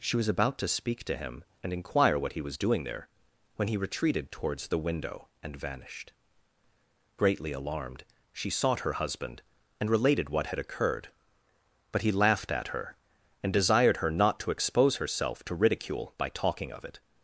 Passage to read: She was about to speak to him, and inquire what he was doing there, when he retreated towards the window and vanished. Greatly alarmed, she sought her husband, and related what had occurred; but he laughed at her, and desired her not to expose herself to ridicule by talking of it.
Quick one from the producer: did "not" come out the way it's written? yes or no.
yes